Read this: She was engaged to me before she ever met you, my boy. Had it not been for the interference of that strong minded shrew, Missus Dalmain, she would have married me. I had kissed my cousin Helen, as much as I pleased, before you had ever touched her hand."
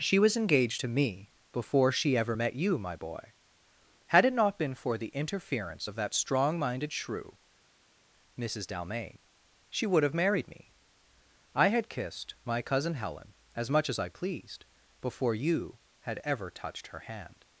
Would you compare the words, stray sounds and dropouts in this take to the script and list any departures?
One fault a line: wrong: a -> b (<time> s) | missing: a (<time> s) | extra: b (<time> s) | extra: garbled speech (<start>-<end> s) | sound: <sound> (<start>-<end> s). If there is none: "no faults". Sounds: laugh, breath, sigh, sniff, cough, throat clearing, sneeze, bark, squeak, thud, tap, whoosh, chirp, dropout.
no faults